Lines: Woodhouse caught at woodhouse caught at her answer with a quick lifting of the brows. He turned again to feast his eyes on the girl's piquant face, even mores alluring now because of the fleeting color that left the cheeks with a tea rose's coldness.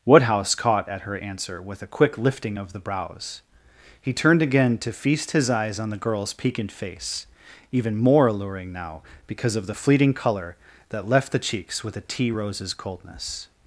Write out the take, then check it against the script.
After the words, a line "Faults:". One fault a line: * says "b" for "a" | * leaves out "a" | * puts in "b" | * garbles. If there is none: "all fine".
Woodhouse caught at her answer with a quick lifting of the brows. He turned again to feast his eyes on the girl's piquant face, even more alluring now because of the fleeting color that left the cheeks with a tea rose's coldness.
Faults:
* leaves out "woodhouse caught at"
* says "more" for "mores"